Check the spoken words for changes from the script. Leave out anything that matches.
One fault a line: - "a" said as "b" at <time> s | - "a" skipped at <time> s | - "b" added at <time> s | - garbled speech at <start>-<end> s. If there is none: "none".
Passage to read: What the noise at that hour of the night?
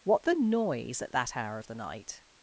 none